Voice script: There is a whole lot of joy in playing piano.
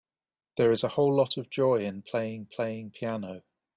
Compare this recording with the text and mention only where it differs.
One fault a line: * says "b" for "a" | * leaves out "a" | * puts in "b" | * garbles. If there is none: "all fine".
* puts in "playing"